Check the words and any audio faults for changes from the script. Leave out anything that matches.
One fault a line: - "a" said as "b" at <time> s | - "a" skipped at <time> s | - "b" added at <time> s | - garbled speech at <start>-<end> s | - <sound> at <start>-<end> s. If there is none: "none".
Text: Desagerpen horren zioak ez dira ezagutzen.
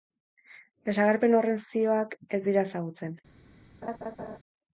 - laugh at 3.8-4.4 s